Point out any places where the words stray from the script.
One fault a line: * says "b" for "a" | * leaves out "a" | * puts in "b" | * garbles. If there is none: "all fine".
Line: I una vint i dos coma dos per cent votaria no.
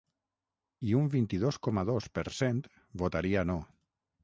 * says "un" for "una"